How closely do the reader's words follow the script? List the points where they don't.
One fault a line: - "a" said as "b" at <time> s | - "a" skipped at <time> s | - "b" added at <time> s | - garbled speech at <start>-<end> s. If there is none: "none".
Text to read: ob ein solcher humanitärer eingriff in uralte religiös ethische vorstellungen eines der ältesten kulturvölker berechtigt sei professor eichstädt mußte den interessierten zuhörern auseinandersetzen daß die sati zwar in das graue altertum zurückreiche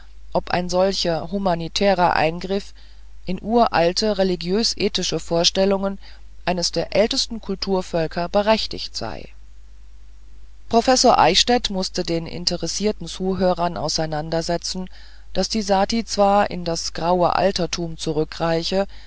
none